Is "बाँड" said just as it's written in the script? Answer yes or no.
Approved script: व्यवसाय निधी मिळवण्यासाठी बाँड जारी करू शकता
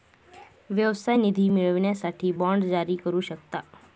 yes